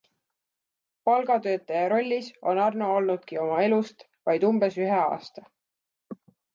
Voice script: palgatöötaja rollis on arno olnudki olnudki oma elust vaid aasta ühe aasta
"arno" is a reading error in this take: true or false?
false